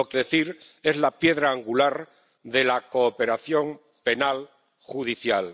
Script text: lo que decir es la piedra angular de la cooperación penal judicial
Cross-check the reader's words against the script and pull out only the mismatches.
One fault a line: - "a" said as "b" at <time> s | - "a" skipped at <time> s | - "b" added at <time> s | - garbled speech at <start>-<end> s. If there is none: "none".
none